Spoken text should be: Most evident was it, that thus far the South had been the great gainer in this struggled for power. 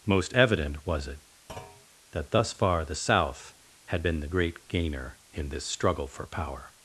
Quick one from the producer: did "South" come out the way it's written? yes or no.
yes